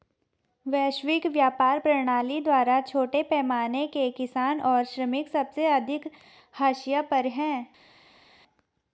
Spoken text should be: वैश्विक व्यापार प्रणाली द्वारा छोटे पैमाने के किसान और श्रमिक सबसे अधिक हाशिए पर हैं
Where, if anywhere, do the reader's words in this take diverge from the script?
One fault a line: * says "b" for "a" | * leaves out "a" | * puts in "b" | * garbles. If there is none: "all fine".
all fine